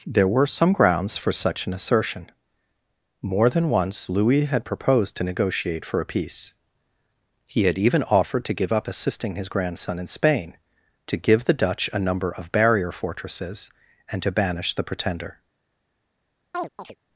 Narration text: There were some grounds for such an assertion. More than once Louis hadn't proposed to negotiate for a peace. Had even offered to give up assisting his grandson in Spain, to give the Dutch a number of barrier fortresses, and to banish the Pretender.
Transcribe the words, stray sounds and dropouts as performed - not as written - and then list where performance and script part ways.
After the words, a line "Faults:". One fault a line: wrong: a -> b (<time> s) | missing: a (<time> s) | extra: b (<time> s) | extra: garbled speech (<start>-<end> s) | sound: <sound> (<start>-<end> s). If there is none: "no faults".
There were some grounds for such an assertion. More than once Louis had proposed to negotiate for a peace. He had even offered to give up assisting his grandson in Spain, to give the Dutch a number of barrier fortresses, and to banish the Pretender.
Faults:
wrong: hadn't -> had (4.5 s)
extra: He (7.5 s)
sound: chirp (16.5-17.0 s)